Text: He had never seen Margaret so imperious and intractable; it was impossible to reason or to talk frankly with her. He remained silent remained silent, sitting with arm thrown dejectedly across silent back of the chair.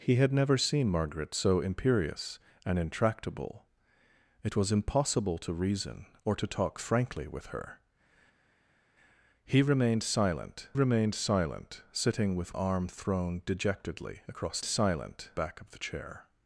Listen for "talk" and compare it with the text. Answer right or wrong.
right